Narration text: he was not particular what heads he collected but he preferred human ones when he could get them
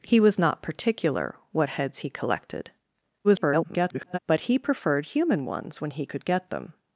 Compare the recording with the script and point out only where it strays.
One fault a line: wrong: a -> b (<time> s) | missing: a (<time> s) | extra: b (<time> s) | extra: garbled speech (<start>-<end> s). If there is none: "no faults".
extra: garbled speech (3.2-4.2 s)